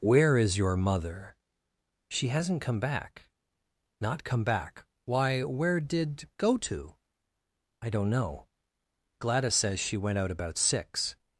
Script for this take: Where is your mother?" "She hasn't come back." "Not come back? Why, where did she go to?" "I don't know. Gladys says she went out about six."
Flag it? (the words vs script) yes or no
yes